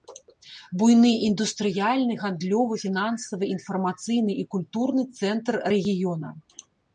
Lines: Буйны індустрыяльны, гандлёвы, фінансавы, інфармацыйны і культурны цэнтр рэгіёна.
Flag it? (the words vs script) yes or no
no